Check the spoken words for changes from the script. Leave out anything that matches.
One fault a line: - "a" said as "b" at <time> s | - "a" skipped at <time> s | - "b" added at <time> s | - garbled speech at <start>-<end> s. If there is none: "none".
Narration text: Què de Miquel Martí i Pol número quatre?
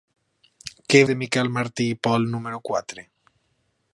none